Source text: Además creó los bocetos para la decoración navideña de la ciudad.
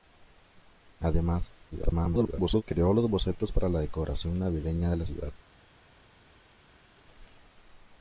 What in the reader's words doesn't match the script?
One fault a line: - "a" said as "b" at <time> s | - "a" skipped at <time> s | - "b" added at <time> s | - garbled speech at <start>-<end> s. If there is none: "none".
- garbled speech at 1.7-2.6 s